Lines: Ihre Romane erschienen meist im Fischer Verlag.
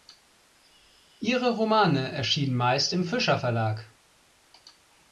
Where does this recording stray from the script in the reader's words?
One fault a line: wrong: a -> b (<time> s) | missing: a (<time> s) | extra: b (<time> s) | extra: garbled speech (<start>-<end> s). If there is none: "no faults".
no faults